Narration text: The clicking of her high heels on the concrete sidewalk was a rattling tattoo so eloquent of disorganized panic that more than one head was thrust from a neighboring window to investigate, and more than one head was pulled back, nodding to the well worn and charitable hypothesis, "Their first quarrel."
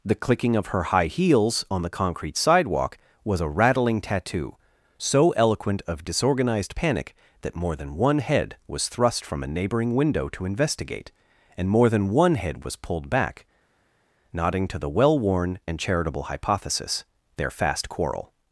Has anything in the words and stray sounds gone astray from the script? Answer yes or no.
yes